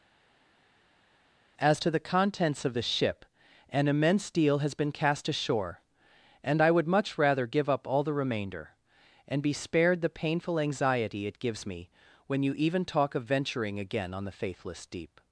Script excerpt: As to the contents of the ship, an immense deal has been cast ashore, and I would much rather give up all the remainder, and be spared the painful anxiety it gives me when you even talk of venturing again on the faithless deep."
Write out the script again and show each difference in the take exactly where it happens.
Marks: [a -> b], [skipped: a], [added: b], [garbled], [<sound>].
As to the contents of the ship, an immense deal has been cast ashore, and I would much rather give up all the remainder, and be spared the painful anxiety it gives me when you even talk of venturing again on the faithless deep."